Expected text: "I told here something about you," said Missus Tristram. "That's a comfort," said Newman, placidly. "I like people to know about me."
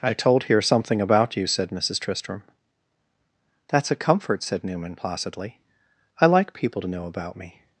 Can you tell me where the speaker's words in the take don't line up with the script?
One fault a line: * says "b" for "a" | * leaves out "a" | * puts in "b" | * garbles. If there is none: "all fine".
all fine